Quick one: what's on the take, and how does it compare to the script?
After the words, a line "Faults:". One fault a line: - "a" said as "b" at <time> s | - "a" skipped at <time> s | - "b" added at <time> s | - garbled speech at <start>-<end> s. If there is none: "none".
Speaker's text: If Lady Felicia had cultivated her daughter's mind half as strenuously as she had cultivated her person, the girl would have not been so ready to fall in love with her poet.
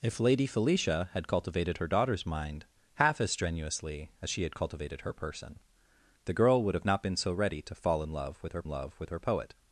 If Lady Felicia had cultivated her daughter's mind half as strenuously as she had cultivated her person, the girl would have not been so ready to fall in love with her love with her poet.
Faults:
- "love with her" added at 8.7 s